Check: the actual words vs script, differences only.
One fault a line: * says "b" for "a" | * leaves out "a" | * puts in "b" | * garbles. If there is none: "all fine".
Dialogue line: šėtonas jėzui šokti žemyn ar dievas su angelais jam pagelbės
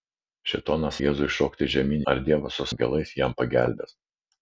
all fine